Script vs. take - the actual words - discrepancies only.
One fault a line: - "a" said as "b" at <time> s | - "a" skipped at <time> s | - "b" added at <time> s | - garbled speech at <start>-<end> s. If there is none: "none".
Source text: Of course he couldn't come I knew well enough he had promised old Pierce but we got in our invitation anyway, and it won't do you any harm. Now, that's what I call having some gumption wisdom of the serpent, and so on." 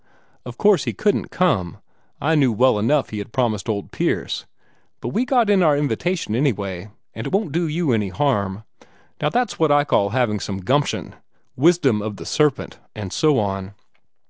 none